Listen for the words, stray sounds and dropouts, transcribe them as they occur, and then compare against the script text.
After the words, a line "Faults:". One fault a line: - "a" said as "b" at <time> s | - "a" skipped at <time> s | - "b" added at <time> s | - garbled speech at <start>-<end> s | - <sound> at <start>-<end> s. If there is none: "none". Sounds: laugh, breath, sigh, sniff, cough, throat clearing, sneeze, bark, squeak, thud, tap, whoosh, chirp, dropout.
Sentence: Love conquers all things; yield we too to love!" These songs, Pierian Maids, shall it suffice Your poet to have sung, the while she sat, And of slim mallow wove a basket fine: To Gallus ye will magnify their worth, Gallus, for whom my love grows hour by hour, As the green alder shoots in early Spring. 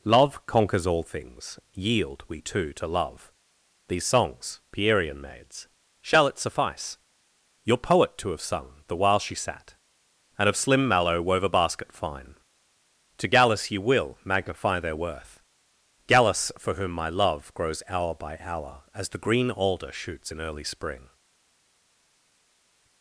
Love conquers all things; yield we too to love!" These songs, Pierian Maids, shall it suffice Your poet to have sung, the while she sat, And of slim mallow wove a basket fine: To Gallus ye will magnify their worth, Gallus, for whom my love grows hour by hour, As the green alder shoots in early Spring.
Faults:
none